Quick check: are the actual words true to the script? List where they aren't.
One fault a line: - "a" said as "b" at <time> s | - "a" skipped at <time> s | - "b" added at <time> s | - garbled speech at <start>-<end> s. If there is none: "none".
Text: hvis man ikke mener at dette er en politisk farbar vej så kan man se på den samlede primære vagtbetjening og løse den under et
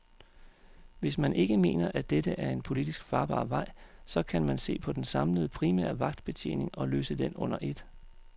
none